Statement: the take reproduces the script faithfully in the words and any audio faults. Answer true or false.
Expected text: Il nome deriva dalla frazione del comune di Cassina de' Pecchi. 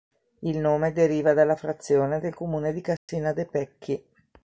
false